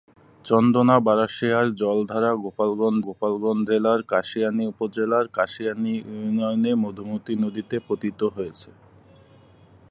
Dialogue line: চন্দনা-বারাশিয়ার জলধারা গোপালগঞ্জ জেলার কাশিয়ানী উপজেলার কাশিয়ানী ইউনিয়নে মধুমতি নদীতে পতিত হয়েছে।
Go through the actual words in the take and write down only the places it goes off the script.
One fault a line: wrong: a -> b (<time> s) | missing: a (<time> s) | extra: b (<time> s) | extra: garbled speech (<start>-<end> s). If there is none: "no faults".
extra: গোপালগঞ্জ (3.1 s)